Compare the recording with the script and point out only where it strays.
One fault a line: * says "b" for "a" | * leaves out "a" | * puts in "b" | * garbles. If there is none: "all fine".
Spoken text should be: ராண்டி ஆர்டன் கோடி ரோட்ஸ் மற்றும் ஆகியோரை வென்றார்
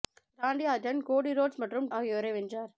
all fine